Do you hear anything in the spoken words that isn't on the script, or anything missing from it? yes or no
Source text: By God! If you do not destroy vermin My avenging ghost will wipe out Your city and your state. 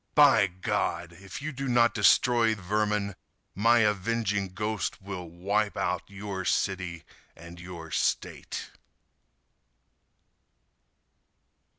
no